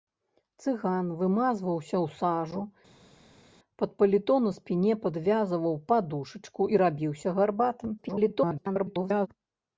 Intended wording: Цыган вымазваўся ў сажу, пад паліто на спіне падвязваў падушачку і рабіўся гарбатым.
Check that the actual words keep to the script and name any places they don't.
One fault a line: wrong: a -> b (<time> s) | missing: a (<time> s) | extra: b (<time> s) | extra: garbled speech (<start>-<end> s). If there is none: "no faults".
extra: garbled speech (8.0-9.3 s)